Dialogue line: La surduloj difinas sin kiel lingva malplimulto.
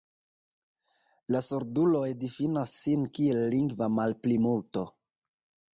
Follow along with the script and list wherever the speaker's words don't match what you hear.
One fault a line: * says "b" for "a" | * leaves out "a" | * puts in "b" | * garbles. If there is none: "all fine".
all fine